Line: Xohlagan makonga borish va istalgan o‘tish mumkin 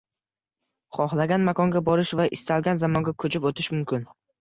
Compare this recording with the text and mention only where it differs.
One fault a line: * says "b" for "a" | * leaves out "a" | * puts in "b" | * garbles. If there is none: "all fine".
* puts in "zamonga ko‘chib"